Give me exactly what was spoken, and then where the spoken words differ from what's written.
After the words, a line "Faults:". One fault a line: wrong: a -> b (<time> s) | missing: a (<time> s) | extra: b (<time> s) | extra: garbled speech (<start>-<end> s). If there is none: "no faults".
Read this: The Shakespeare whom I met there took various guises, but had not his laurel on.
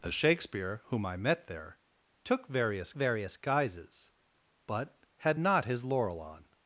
The Shakespeare whom I met there took various various guises, but had not his laurel on.
Faults:
extra: various (2.9 s)